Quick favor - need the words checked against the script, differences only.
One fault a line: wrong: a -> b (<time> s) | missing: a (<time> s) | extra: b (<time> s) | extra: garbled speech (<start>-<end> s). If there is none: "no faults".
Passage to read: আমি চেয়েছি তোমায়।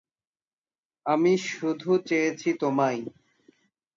extra: শুধু (1.5 s)